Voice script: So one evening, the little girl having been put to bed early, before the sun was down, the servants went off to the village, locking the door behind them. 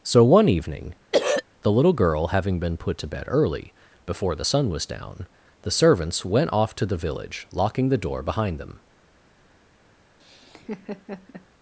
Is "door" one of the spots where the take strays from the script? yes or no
no